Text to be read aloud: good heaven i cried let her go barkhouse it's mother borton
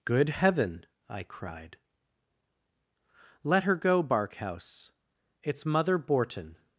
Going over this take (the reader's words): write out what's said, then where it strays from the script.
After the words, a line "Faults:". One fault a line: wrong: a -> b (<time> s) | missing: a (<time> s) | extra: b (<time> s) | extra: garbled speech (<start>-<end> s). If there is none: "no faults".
good heaven i cried let her go barkhouse it's mother borton
Faults:
no faults